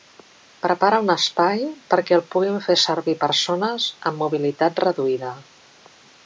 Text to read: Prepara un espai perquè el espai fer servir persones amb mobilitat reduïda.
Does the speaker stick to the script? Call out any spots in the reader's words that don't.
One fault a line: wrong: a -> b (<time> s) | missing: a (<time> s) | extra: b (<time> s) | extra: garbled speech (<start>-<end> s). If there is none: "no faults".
wrong: espai -> puguin (2.4 s)